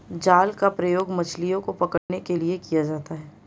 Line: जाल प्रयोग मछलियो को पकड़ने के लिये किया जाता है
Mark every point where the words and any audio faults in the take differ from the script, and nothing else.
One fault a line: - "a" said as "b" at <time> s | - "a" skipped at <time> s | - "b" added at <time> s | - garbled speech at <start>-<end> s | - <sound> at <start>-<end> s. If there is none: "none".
- "का" added at 0.5 s
- dropout at 2.0-2.1 s